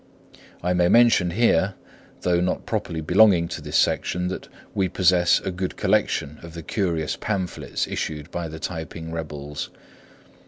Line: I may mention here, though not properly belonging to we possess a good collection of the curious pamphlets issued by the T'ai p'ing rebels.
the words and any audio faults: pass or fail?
fail